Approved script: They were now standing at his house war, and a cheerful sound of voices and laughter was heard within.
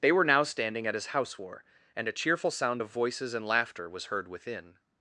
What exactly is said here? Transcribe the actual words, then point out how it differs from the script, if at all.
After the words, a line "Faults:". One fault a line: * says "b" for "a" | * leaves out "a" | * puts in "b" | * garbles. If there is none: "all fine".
They were now standing at his house war, and a cheerful sound of voices and laughter was heard within.
Faults:
all fine